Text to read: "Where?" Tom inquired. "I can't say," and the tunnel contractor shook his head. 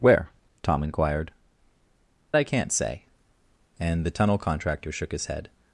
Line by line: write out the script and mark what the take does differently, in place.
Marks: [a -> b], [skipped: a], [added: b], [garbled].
"Where?" Tom inquired. "I can't say," and the tunnel contractor shook his head.